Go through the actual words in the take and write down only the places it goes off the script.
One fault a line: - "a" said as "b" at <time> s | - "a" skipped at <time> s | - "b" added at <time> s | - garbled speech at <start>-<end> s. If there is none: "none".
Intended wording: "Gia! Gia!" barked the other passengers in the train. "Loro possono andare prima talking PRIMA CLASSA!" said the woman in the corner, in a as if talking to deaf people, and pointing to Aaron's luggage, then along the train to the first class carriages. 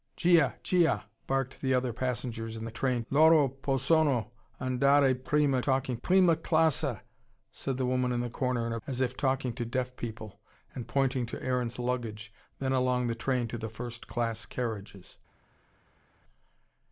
none